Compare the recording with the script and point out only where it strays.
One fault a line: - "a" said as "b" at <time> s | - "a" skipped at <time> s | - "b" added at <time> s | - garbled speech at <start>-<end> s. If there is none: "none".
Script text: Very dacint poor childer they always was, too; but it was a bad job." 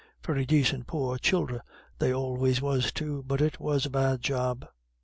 none